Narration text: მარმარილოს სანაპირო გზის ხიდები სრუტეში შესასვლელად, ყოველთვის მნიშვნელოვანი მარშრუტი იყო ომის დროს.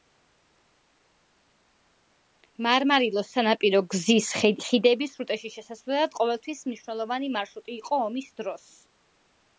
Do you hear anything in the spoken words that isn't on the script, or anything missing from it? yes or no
no